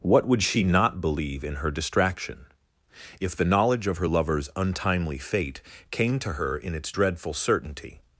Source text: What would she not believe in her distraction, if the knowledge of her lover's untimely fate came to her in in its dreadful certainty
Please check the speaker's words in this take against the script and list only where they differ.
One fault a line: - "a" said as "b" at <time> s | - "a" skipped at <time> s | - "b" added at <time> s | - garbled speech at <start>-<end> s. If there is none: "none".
- "in" skipped at 6.7 s